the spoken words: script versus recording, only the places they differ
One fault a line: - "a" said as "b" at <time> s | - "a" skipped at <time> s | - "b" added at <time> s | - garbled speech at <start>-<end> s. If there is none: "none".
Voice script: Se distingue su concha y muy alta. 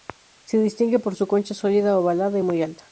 - "por" added at 1.0 s
- "sólida ovalada" added at 1.5 s